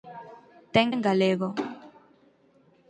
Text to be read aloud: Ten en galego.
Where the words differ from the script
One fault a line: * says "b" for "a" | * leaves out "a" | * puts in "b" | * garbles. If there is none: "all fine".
all fine